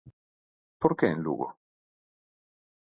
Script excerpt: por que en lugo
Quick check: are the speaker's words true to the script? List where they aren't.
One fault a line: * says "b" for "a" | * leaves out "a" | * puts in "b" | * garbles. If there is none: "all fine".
all fine